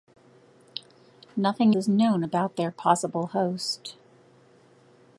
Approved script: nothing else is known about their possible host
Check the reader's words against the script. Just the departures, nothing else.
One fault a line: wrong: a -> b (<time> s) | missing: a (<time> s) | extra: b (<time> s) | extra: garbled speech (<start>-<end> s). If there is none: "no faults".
missing: else (1.8 s)